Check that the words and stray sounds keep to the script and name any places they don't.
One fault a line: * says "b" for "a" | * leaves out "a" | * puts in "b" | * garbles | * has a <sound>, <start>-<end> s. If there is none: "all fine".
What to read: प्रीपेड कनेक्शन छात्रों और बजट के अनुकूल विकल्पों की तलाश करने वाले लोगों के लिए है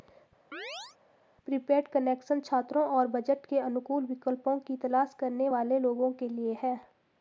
* has a chirp, 0.5-1.0 s